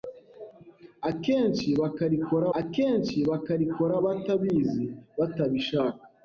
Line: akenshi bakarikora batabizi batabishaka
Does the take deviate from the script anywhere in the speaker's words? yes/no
yes